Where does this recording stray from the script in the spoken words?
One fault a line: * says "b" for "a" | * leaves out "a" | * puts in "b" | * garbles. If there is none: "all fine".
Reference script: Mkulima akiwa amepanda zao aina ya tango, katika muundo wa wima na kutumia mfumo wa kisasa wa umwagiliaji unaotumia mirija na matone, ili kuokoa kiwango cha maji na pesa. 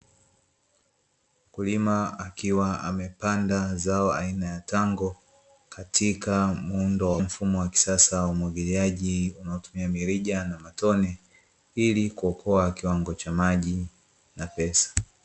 * leaves out "wima na kutumia"